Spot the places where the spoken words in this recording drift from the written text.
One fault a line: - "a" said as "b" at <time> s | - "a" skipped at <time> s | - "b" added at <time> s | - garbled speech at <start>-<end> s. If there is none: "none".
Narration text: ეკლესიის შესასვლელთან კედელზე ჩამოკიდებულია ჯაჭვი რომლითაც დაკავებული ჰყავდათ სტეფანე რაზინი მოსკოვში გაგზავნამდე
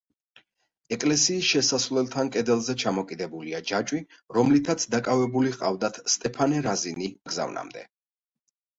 - "მოსკოვში" skipped at 7.1 s